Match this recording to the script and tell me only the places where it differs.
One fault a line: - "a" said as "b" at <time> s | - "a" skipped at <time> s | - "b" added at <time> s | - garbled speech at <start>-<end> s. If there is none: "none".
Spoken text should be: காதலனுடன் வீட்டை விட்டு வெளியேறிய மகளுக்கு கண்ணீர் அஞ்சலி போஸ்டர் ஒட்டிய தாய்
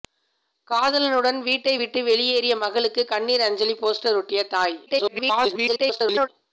- garbled speech at 4.9-6.3 s